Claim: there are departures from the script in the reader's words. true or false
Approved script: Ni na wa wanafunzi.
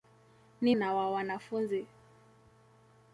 false